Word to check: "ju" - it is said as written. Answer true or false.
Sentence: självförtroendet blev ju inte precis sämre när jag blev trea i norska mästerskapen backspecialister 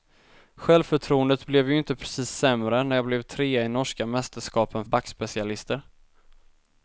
true